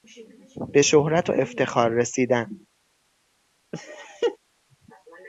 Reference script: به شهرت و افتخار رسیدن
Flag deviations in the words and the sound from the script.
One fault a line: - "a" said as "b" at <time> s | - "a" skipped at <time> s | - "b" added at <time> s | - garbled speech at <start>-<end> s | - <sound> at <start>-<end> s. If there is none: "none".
- laugh at 3.7-4.4 s